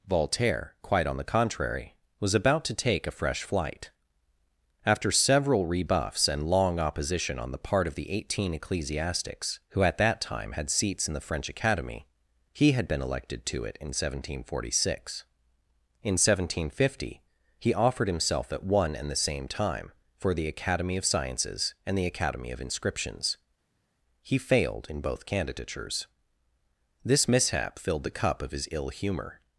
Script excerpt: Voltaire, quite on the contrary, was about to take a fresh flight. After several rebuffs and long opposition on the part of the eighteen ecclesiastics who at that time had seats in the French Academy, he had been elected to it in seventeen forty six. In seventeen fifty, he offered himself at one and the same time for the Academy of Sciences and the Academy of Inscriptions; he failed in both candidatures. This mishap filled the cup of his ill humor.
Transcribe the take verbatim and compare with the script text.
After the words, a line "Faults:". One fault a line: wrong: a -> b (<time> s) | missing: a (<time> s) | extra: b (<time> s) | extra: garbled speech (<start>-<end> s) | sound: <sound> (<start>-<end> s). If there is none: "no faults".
Voltaire, quite on the contrary, was about to take a fresh flight. After several rebuffs and long opposition on the part of the eighteen ecclesiastics who at that time had seats in the French Academy, he had been elected to it in seventeen forty six. In seventeen fifty, he offered himself at one and the same time for the Academy of Sciences and the Academy of Inscriptions; he failed in both candidatures. This mishap filled the cup of his ill humor.
Faults:
no faults